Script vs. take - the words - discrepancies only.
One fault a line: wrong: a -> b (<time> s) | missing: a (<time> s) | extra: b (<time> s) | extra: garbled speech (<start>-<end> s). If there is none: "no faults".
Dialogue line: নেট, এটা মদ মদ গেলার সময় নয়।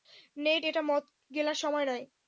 missing: মদ (1.0 s)